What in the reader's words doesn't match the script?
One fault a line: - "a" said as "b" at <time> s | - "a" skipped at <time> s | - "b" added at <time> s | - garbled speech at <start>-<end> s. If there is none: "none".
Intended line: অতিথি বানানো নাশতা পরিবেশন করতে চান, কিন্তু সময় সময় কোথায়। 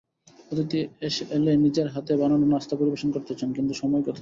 - "এলে নিজের হাতে" added at 1.4 s
- "সময়" skipped at 4.0 s